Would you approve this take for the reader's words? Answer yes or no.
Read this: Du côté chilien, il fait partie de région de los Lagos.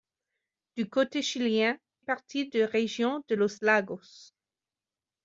no